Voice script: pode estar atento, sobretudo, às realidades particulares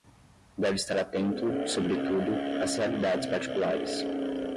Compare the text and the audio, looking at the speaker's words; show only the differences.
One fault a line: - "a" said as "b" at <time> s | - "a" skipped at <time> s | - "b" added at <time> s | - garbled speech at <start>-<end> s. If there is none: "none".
- "pode" said as "deve" at 0.6 s